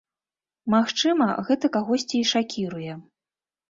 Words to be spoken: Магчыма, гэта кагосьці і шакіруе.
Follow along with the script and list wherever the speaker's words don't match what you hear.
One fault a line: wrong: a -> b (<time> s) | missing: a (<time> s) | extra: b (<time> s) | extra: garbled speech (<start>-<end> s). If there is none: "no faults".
no faults